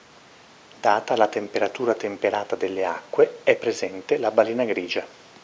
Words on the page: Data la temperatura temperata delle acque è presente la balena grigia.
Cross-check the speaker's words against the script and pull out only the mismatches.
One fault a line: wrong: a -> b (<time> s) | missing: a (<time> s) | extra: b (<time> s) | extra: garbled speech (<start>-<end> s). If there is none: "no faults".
no faults